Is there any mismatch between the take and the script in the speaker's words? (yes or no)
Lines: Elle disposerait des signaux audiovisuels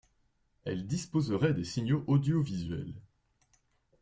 no